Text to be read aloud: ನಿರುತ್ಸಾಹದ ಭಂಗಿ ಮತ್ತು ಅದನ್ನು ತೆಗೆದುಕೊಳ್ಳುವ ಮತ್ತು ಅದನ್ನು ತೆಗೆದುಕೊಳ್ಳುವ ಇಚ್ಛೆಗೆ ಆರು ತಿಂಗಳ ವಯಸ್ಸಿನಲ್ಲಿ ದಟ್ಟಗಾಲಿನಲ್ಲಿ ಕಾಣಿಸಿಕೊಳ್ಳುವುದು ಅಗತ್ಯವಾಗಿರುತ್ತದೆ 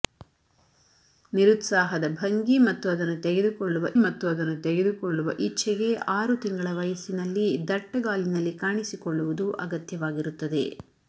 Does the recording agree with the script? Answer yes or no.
yes